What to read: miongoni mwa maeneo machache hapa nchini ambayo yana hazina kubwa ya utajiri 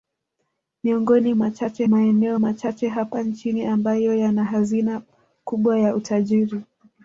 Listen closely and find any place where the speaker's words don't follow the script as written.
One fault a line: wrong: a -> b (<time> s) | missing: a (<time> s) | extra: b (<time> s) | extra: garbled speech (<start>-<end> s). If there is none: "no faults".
wrong: mwa -> machache (1.3 s)